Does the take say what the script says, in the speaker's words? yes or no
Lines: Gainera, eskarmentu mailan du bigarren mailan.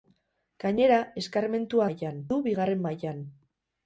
yes